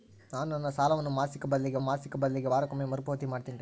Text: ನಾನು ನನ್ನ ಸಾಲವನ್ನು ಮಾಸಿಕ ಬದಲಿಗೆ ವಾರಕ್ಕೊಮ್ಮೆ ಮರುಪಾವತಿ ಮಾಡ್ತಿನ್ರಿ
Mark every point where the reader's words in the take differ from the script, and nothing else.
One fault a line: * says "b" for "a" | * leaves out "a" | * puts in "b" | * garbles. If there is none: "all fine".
* puts in "ಮಾಸಿಕ ಬದಲಿಗೆ"